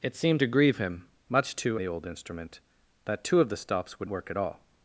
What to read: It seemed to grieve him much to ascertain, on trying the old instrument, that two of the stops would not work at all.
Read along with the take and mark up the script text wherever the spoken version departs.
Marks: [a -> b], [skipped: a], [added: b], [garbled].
It seemed to grieve him much to [skipped: ascertain, on trying] the old instrument, that two of the stops would [skipped: not] work at all.